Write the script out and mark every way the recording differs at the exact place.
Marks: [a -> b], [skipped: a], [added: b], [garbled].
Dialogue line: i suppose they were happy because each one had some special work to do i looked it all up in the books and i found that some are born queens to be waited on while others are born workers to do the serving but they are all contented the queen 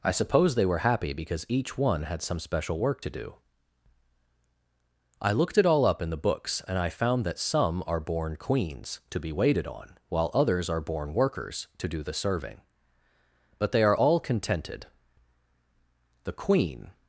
i suppose they were happy because each one had some special work to do i looked it all up in the books and i found that some are born queens to be waited on while others are born workers to do the serving but they are all contented the queen